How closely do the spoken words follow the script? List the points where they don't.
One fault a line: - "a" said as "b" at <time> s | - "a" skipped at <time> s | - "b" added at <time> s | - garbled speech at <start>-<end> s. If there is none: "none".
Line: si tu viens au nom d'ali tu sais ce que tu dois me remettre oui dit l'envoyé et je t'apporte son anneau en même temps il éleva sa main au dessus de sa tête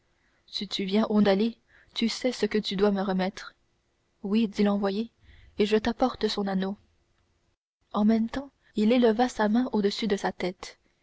- "nom" skipped at 1.2 s